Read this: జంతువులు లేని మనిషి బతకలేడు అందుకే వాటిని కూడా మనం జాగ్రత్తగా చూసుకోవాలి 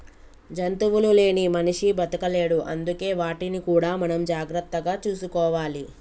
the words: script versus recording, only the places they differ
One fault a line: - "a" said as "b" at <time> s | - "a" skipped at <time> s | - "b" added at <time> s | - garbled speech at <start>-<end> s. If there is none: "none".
none